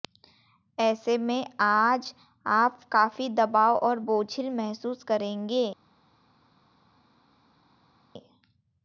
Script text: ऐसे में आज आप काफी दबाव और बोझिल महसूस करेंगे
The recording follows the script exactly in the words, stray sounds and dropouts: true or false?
true